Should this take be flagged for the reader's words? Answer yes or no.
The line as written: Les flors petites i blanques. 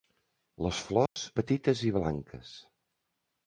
no